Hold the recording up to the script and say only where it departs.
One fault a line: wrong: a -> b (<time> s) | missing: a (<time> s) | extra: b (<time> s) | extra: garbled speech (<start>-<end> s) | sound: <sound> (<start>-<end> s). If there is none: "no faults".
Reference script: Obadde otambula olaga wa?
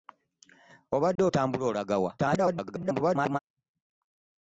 sound: dropout (1.2-1.2 s)
extra: garbled speech (2.2-3.4 s)